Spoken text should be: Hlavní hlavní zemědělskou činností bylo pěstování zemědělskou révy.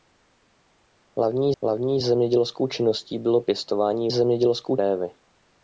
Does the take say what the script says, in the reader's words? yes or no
yes